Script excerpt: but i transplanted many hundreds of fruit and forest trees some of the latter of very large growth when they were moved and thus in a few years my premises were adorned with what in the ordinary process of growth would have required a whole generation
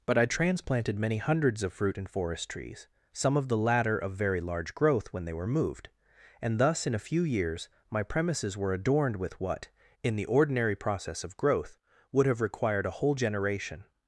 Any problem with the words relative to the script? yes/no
no